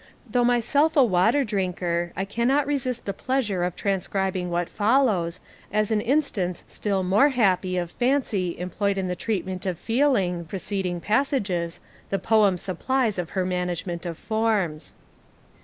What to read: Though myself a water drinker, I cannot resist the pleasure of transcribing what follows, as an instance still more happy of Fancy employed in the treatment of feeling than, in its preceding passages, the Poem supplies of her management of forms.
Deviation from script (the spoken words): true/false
true